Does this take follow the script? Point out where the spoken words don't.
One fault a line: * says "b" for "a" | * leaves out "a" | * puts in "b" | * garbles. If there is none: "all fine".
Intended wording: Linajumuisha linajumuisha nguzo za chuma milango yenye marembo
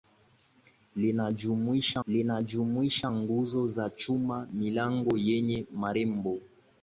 all fine